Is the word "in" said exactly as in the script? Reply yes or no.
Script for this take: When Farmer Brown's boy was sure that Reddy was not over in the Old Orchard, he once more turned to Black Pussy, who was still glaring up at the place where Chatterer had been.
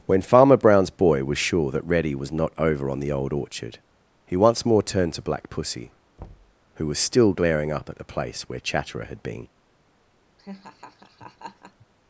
no